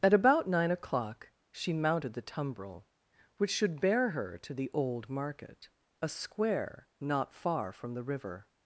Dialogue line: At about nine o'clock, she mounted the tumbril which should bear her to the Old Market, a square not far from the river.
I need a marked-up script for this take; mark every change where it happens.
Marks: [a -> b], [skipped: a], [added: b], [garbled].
At about nine o'clock, she mounted the tumbril which should bear her to the Old Market, a square not far from the river.